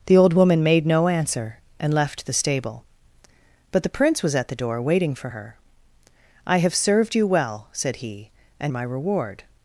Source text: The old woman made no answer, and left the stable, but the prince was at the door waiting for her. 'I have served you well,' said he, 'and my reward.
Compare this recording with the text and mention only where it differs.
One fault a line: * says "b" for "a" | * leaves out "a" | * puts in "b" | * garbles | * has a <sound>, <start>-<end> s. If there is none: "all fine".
all fine